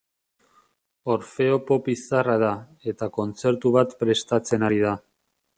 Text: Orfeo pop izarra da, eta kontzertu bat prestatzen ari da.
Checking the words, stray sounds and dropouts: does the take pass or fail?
pass